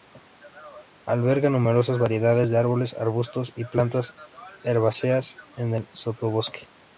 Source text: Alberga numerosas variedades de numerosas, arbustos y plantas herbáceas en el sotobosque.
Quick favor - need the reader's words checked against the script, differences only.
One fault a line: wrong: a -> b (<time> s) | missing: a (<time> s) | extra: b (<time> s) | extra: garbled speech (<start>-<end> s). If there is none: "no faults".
wrong: numerosas -> árboles (2.6 s)